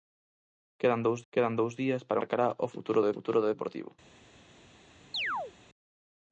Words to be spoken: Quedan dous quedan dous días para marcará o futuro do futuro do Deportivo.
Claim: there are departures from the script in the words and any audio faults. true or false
true